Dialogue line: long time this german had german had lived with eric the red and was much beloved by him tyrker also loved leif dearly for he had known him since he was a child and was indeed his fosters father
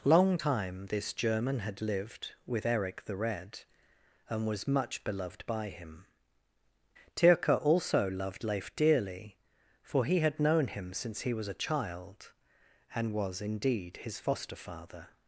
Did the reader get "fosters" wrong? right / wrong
wrong